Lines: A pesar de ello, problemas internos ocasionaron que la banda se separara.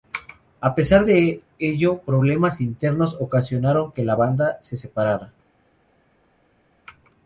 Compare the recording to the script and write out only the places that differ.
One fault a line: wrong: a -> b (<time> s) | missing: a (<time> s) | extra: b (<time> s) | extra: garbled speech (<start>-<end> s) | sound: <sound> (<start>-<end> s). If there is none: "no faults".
no faults